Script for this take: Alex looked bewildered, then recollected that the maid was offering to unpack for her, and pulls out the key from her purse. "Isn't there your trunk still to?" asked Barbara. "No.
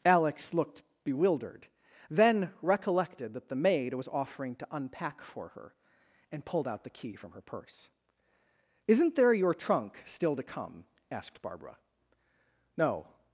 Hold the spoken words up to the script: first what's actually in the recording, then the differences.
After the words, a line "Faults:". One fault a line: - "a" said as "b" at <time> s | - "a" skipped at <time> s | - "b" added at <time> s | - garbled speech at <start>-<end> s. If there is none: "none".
Alex looked bewildered, then recollected that the maid was offering to unpack for her, and pulled out the key from her purse. "Isn't there your trunk still to come?" asked Barbara. "No.
Faults:
- "pulls" said as "pulled" at 6.5 s
- "come" added at 10.4 s